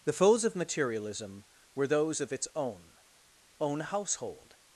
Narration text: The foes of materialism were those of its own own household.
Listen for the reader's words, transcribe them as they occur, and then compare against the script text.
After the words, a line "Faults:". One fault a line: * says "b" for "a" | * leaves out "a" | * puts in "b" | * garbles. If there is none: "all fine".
The foes of materialism were those of its own own household.
Faults:
all fine